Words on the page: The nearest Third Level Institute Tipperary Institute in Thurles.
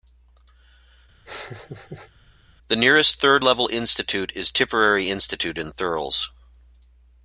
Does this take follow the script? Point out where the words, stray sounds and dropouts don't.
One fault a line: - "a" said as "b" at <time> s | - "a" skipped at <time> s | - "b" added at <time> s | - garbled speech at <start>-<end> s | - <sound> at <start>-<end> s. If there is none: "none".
- laugh at 1.3-2.1 s
- "is" added at 4.4 s